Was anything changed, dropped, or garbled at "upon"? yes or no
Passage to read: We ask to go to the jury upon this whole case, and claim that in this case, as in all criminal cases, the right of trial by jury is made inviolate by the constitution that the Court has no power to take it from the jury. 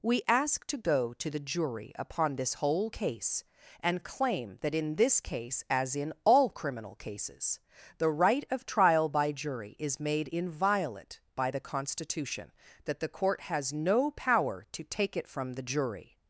no